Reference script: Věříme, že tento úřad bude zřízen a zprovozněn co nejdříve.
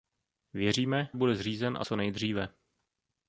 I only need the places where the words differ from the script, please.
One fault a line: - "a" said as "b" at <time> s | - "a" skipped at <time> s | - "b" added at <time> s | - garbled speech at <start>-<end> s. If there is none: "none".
- "že tento úřad" skipped at 1.1 s
- "zprovozněn" skipped at 1.8 s